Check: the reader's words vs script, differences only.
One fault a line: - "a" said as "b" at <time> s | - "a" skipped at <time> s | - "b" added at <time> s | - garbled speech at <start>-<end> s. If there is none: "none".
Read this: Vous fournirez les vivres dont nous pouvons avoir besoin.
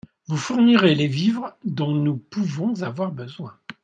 none